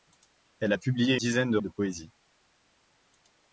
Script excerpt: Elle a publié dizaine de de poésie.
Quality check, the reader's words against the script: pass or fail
pass